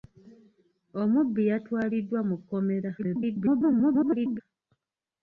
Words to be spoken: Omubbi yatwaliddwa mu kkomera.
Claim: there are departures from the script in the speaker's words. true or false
true